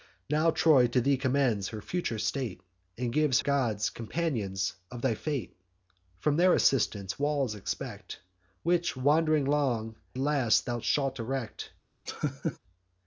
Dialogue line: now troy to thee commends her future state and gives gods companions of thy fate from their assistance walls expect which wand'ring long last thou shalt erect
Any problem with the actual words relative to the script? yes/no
no